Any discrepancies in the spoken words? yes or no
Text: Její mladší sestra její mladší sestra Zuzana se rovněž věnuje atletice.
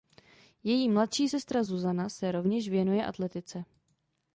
yes